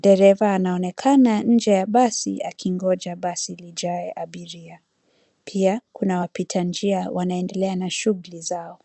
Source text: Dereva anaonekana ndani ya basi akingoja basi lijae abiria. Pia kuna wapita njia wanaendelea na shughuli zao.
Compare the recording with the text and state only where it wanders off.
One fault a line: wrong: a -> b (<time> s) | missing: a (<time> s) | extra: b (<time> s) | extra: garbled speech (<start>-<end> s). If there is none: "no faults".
wrong: ndani -> nje (1.4 s)